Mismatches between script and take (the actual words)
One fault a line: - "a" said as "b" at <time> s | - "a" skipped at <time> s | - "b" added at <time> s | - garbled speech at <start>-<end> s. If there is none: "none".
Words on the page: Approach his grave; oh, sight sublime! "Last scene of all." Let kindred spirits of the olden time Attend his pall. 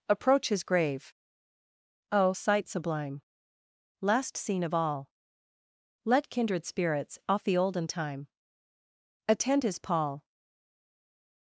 - "of" said as "off" at 7.3 s